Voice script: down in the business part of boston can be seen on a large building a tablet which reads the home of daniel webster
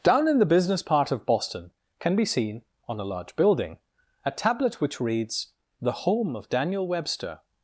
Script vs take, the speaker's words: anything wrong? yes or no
no